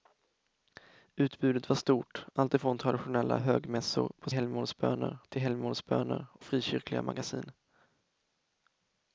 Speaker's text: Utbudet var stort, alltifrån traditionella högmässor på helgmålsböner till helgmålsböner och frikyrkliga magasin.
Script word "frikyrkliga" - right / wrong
right